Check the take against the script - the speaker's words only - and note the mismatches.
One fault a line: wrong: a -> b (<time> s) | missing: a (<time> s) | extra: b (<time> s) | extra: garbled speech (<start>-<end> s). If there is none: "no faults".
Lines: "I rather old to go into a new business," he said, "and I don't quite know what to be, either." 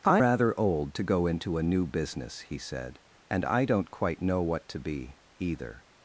no faults